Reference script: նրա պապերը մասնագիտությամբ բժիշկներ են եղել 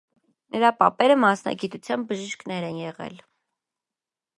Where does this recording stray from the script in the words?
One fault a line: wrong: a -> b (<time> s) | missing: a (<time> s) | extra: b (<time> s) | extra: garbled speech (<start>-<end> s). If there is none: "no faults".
no faults